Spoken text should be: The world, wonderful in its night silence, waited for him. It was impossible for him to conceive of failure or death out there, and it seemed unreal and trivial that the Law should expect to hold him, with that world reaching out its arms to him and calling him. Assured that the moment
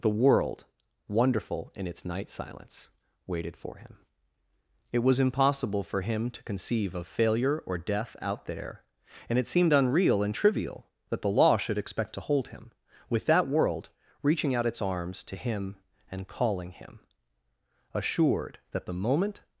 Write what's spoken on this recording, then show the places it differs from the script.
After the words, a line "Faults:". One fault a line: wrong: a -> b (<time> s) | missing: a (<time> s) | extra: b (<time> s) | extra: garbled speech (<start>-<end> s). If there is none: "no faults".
The world, wonderful in its night silence, waited for him. It was impossible for him to conceive of failure or death out there, and it seemed unreal and trivial that the Law should expect to hold him, with that world reaching out its arms to him and calling him. Assured that the moment
Faults:
no faults